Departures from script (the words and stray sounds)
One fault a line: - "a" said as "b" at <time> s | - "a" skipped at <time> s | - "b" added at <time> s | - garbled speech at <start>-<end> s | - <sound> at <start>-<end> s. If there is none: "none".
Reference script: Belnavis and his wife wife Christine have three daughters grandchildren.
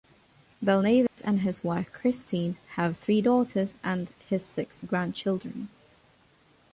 - dropout at 1.1-1.2 s
- "wife" skipped at 1.9 s
- "and his six" added at 3.8 s